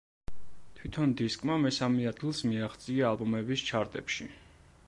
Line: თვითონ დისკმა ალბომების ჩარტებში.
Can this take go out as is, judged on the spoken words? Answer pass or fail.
fail